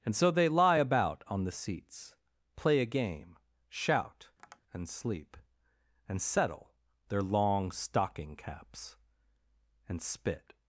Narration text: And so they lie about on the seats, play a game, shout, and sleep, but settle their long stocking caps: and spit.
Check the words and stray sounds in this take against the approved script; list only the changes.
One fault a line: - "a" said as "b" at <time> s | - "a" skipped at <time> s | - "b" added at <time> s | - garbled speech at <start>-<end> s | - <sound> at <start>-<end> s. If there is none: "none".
- tap at 4.4-4.6 s
- "but" said as "and" at 6.1 s